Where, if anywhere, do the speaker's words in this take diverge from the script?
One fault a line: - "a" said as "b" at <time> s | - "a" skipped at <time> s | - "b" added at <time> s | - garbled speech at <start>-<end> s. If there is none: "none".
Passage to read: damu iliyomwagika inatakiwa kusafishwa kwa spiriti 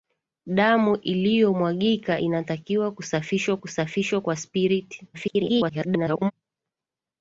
- "kusafishwa" added at 3.6 s
- garbled speech at 5.1-6.3 s